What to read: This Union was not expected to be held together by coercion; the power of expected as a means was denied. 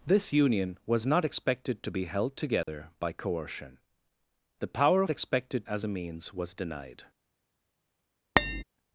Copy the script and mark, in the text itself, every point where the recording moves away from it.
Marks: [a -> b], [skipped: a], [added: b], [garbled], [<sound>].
This Union was not expected to be held together [dropout] by coercion; the power of expected as a means was denied. [tap]